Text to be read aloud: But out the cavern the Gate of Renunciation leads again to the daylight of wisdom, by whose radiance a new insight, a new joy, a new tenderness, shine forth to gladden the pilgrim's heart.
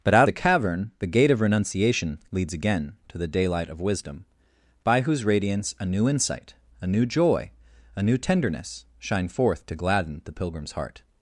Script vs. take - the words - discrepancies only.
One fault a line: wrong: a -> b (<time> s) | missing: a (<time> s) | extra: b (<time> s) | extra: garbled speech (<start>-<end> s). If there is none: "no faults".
no faults